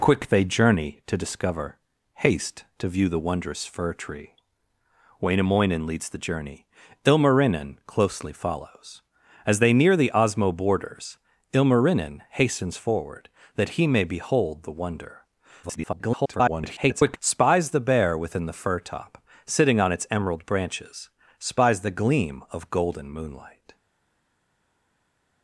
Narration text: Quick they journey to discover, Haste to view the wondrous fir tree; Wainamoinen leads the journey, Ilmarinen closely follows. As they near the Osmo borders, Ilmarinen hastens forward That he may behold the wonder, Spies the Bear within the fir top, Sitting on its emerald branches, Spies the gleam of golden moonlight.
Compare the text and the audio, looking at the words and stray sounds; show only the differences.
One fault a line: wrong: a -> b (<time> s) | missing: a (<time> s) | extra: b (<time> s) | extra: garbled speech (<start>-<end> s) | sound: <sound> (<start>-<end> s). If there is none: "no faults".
extra: garbled speech (15.6-17.2 s)